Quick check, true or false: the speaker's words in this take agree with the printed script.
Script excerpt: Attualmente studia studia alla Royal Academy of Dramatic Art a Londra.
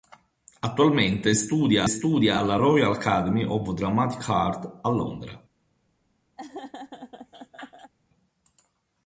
true